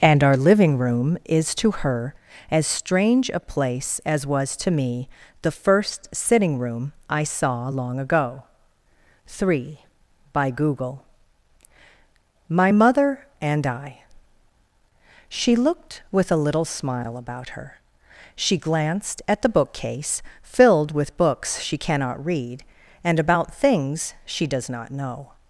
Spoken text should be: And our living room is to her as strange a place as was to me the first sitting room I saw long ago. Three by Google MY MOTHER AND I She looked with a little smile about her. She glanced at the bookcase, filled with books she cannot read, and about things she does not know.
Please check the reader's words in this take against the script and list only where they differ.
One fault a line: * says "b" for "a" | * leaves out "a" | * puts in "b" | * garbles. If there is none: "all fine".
all fine